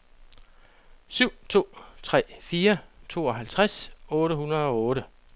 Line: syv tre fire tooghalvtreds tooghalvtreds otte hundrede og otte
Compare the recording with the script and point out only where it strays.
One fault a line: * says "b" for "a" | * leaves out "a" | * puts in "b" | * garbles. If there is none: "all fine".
* puts in "to"
* leaves out "tooghalvtreds"